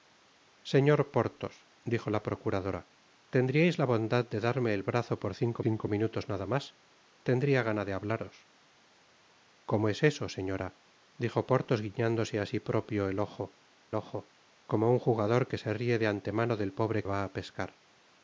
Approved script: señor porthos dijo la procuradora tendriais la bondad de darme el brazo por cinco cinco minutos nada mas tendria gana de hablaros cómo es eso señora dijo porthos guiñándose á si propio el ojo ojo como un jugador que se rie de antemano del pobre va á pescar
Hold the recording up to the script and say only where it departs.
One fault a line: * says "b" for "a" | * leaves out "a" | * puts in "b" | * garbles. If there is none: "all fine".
all fine